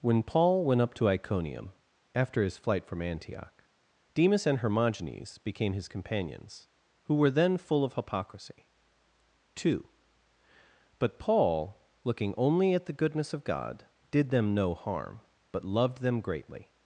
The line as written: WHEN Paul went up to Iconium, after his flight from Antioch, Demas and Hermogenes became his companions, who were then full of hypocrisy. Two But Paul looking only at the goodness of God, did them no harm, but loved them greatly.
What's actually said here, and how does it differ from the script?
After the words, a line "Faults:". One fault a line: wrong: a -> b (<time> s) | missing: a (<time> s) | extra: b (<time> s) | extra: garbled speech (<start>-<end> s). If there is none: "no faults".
WHEN Paul went up to Iconium, after his flight from Antioch, Demas and Hermogenes became his companions, who were then full of hypocrisy. Two But Paul looking only at the goodness of God, did them no harm, but loved them greatly.
Faults:
no faults